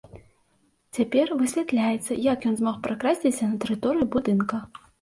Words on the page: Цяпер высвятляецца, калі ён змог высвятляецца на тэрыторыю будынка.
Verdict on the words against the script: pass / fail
fail